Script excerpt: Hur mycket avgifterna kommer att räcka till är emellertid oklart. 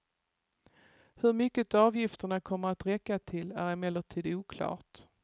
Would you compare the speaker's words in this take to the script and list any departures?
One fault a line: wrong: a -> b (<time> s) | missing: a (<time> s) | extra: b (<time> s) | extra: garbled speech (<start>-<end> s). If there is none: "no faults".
no faults